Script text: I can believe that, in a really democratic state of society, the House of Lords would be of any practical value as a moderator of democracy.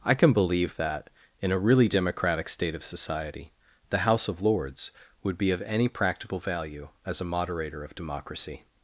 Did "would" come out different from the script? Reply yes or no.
no